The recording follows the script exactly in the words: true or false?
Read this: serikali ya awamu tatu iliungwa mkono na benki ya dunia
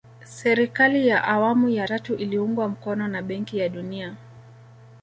false